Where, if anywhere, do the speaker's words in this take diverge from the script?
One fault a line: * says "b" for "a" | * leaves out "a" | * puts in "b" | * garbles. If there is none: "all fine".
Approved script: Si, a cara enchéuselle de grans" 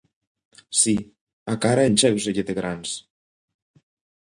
all fine